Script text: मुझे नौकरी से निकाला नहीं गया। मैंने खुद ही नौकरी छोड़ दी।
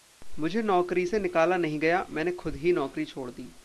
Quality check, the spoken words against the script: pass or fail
pass